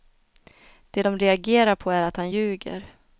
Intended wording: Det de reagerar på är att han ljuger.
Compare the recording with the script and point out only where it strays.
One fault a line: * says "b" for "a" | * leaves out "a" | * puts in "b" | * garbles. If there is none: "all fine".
all fine